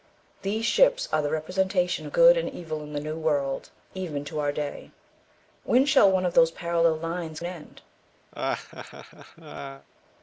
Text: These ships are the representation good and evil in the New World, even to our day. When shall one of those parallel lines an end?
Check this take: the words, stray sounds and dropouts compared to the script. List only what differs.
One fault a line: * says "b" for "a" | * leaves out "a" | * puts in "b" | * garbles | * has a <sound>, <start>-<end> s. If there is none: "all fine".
* has a laugh, 8.3-9.9 s